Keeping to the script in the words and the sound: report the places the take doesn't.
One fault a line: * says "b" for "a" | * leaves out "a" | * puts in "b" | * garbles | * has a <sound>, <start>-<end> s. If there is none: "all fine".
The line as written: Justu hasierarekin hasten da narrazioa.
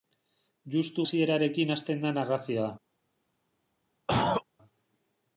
* has a cough, 4.1-4.4 s